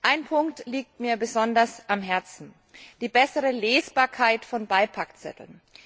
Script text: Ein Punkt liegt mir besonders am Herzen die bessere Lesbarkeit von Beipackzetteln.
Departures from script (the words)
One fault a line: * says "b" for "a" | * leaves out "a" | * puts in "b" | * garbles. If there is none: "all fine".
all fine